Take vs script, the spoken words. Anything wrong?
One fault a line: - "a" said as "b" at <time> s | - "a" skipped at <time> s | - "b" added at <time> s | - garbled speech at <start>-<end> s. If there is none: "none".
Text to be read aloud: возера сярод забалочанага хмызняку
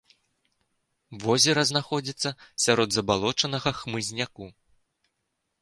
- "знаходзіцца" added at 1.7 s